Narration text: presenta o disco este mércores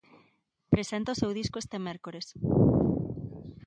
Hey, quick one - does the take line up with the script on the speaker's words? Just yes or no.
no